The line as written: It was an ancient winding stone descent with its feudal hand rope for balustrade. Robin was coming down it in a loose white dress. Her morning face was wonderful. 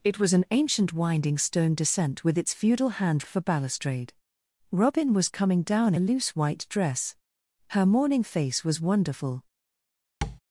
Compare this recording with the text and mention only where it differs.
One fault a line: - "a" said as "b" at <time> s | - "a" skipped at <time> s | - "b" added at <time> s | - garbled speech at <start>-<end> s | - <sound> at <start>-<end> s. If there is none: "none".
- "rope" skipped at 3.2 s
- "it in" skipped at 5.9 s
- tap at 10.2-10.4 s